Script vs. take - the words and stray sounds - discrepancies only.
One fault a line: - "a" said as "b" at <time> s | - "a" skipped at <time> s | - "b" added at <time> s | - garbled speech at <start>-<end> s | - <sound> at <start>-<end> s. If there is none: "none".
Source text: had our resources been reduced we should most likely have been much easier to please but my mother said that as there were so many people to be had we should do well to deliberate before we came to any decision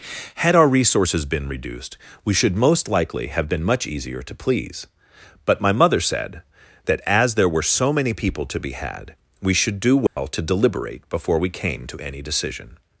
- dropout at 10.1-10.2 s